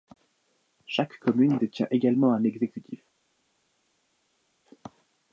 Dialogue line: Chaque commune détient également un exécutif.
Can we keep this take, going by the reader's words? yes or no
yes